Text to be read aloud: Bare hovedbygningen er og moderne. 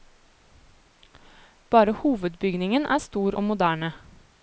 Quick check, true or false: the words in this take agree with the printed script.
false